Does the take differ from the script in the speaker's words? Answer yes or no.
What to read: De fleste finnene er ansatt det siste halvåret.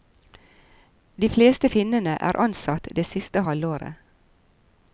no